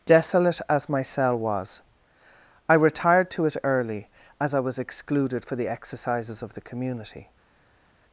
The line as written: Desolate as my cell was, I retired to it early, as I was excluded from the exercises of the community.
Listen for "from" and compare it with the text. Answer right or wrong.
wrong